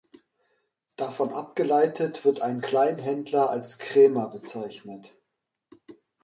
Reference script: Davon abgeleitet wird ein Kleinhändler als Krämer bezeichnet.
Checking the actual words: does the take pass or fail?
pass